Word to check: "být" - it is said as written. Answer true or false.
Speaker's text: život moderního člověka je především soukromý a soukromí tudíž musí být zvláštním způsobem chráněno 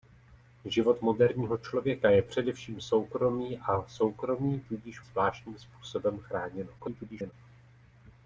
false